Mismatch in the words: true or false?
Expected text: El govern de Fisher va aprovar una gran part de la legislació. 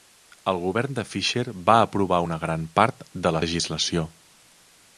false